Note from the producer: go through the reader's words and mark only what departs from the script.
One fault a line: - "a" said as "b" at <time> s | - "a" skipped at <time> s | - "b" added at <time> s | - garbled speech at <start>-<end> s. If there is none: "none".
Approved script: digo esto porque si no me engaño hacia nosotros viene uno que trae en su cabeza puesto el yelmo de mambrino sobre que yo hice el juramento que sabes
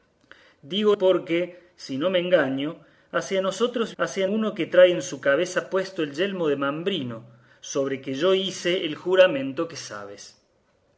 - "esto" skipped at 1.0 s
- "viene" said as "hacia" at 4.0 s